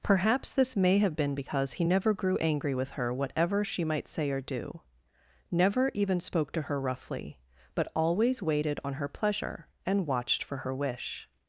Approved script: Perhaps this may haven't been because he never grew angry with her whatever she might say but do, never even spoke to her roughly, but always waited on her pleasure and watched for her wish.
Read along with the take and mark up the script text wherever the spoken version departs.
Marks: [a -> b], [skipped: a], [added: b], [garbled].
Perhaps this may [haven't -> have] been because he never grew angry with her whatever she might say [but -> or] do, never even spoke to her roughly, but always waited on her pleasure and watched for her wish.